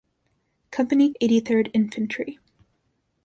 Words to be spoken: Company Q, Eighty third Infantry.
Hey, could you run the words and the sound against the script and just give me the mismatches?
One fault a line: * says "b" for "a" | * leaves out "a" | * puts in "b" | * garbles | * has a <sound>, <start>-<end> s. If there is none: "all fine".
* leaves out "Q"